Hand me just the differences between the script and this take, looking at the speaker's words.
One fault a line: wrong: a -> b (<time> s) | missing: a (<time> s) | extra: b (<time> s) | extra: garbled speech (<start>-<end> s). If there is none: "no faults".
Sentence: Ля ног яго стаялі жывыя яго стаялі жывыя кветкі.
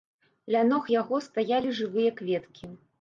missing: яго стаялі жывыя (2.1 s)